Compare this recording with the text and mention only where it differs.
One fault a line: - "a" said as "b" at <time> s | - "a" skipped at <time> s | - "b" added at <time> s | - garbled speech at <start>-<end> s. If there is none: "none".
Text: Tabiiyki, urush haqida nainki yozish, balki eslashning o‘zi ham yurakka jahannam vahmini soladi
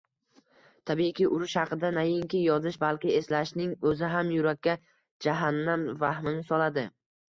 none